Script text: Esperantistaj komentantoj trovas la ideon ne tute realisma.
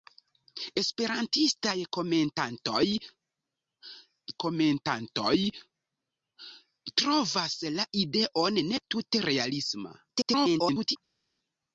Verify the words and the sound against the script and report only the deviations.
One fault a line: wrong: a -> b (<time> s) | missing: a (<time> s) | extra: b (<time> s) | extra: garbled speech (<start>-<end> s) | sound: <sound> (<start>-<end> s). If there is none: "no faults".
extra: komentantoj (4.5 s)
extra: garbled speech (10.1-11.0 s)